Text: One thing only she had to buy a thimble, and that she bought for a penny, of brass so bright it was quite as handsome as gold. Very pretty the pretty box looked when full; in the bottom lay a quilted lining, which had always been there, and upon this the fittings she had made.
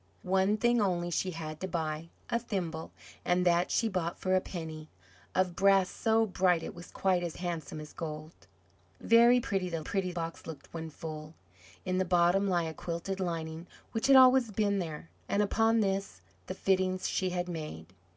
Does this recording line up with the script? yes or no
yes